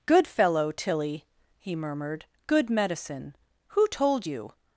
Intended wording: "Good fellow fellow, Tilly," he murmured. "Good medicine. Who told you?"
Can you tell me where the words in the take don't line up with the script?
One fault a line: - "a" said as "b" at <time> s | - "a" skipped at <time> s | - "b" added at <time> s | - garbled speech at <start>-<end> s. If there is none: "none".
- "fellow" skipped at 0.7 s